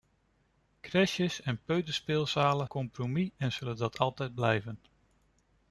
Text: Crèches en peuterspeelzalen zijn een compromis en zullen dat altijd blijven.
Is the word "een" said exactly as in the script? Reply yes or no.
no